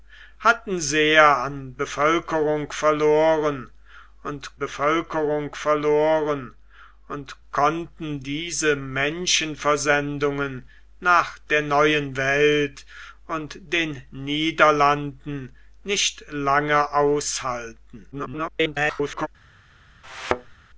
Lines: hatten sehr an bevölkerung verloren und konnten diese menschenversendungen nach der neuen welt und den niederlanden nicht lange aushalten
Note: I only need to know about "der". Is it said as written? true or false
true